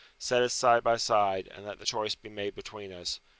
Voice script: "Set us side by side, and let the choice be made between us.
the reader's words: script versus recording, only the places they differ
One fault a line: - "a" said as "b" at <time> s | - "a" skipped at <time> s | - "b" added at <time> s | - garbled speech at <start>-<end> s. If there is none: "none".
none